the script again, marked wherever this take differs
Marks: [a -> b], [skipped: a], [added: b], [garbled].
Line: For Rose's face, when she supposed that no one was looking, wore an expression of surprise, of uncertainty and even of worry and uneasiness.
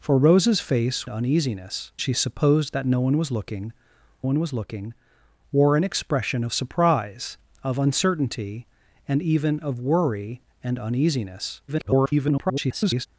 For Rose's face, [when -> uneasiness] she supposed that no one was looking, [added: one was looking] wore an expression of surprise, of uncertainty and even of worry and uneasiness. [garbled]